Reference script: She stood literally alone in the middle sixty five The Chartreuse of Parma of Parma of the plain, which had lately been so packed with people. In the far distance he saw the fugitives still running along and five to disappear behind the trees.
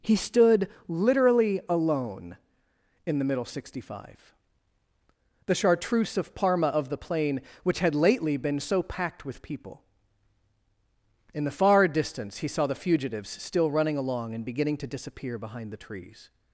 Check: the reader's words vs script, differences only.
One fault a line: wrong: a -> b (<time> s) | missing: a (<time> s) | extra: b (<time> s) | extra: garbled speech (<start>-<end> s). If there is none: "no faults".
wrong: She -> He (0.0 s)
missing: Parma of (6.9 s)
wrong: five -> beginning (14.4 s)